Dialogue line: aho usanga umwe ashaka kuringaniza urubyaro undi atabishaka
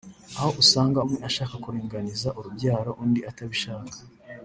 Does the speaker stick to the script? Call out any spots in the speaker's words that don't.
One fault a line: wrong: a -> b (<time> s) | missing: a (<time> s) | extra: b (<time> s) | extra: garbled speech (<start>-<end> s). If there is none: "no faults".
no faults